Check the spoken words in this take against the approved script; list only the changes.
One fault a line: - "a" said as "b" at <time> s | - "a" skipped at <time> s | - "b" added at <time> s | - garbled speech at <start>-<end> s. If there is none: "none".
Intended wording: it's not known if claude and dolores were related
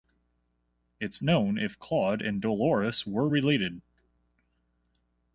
- "not" skipped at 1.2 s